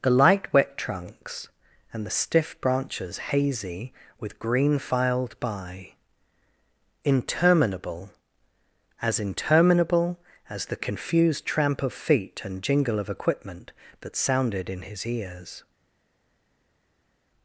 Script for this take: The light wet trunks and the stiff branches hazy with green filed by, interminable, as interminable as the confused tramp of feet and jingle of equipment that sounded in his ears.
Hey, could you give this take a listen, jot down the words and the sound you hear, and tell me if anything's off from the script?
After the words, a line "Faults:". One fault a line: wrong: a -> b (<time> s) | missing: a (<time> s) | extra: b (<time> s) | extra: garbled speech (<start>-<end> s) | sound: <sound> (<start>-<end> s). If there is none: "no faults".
The light wet trunks and the stiff branches hazy with green filed by, interminable, as interminable as the confused tramp of feet and jingle of equipment that sounded in his ears.
Faults:
no faults